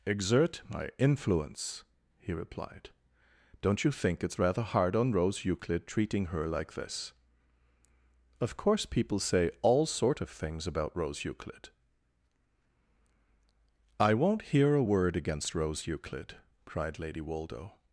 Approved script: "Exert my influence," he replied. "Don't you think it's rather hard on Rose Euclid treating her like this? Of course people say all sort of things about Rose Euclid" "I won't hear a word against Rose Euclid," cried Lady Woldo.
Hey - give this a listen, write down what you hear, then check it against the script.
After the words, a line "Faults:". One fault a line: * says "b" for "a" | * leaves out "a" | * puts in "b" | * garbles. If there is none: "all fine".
"Exert my influence," he replied. "Don't you think it's rather hard on Rose Euclid treating her like this? Of course people say all sort of things about Rose Euclid" "I won't hear a word against Rose Euclid," cried Lady Woldo.
Faults:
all fine